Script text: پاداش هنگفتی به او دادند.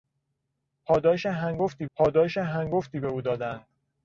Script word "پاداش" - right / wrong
right